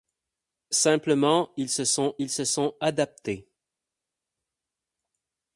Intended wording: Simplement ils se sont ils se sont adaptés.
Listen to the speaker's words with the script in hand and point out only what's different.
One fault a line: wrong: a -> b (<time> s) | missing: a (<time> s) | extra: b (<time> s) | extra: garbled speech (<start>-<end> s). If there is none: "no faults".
no faults